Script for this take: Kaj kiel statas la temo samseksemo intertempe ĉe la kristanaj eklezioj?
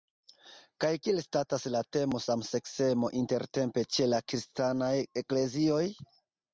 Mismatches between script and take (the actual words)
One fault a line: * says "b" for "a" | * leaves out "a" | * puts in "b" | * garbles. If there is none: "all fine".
all fine